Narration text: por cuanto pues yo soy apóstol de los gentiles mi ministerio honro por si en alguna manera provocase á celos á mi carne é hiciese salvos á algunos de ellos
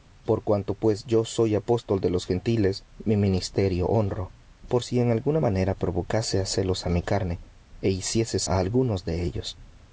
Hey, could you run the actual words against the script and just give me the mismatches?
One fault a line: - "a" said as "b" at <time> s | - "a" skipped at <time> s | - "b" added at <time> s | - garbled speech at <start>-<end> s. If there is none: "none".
- "salvos" skipped at 8.4 s